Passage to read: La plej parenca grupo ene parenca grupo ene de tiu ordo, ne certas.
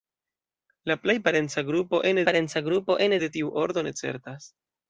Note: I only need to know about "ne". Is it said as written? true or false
true